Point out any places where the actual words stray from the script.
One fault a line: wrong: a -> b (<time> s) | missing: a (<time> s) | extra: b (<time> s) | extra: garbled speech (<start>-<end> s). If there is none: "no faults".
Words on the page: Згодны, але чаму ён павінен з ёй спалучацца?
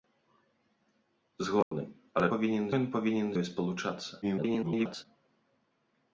wrong: чаму -> павінен (2.3 s)
missing: з (3.3 s)
extra: garbled speech (4.2-5.1 s)